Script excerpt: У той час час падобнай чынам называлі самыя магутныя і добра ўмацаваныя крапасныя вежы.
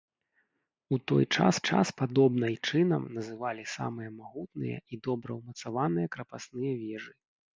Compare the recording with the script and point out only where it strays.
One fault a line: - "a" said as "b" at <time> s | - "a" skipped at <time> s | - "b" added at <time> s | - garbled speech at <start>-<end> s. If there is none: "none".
none